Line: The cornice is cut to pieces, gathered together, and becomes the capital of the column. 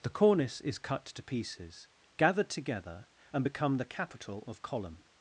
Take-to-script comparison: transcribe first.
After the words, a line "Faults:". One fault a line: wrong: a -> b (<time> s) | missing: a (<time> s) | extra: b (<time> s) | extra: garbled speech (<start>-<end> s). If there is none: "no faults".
The cornice is cut to pieces, gathered together, and become the capital of column.
Faults:
wrong: becomes -> become (3.4 s)
missing: the (4.6 s)